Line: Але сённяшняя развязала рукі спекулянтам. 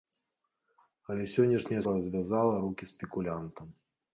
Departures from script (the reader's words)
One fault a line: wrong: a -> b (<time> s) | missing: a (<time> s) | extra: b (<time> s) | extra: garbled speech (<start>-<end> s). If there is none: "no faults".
no faults